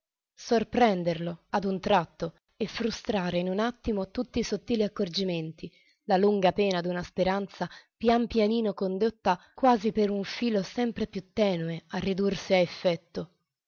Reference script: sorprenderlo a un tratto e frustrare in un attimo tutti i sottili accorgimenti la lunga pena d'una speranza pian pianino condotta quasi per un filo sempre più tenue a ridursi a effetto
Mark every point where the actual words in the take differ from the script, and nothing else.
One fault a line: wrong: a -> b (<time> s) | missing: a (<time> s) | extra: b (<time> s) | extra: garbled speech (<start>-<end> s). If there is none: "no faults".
no faults